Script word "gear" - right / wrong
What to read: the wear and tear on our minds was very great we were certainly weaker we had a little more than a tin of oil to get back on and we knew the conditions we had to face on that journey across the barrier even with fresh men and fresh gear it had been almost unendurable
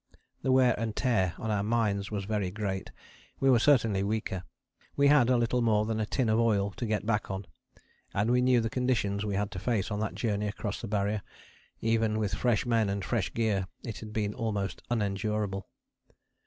right